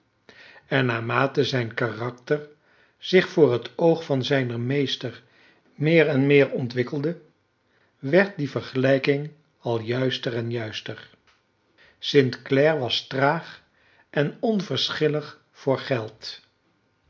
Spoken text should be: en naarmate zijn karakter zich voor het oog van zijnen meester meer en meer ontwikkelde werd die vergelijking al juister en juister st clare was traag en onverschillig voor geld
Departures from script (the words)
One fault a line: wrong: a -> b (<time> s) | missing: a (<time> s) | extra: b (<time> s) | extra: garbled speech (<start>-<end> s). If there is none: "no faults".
no faults